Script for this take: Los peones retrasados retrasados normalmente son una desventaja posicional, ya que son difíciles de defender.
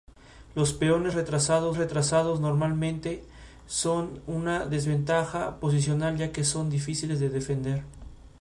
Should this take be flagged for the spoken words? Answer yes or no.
no